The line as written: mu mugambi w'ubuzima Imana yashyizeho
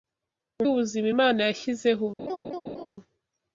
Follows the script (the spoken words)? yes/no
no